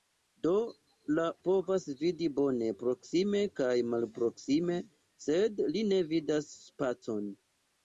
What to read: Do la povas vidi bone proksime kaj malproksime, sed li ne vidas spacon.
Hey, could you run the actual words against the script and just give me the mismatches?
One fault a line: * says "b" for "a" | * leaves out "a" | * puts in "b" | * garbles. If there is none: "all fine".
all fine